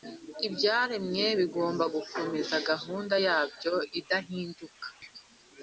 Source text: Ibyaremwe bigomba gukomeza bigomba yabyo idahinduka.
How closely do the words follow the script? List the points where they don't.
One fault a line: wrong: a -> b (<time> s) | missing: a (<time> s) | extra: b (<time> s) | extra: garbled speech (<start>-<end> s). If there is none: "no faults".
wrong: bigomba -> gahunda (2.7 s)